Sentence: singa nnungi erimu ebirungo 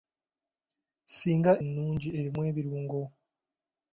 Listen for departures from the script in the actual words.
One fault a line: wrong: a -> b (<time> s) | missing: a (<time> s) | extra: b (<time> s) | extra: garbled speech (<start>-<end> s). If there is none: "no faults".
no faults